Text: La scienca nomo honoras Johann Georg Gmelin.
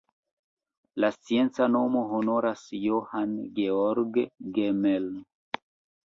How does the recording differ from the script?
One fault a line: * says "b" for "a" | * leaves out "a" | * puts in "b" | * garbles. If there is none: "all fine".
all fine